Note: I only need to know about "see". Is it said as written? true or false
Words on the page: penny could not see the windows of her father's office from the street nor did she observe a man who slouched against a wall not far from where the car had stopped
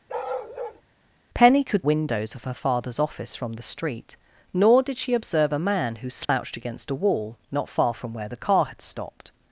false